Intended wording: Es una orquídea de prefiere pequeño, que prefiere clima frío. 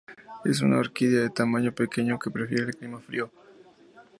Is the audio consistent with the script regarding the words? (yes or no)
no